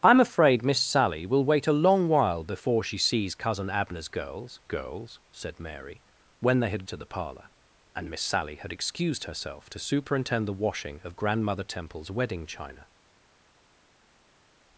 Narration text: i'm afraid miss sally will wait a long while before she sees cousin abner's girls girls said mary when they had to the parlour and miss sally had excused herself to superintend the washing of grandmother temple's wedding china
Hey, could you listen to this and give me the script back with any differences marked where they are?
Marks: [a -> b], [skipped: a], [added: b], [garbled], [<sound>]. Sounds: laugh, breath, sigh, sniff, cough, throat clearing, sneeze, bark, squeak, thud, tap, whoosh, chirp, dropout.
i'm afraid miss sally will wait a long while before she sees cousin abner's girls girls said mary when they had to the parlour and miss sally had excused herself to superintend the washing of grandmother temple's wedding china